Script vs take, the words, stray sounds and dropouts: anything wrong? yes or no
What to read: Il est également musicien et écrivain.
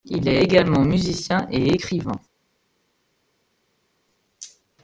no